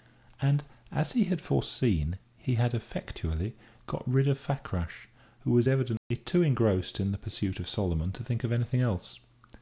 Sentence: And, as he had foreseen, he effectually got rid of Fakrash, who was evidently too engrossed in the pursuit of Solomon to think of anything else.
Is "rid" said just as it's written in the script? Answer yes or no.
yes